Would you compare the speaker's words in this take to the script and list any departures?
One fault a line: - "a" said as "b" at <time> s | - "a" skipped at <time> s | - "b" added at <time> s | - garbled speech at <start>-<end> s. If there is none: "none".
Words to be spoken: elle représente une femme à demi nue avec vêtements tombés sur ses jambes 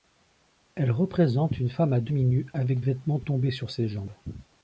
none